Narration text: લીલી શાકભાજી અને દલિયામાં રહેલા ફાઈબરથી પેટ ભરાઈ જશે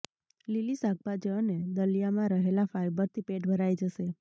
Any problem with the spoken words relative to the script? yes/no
no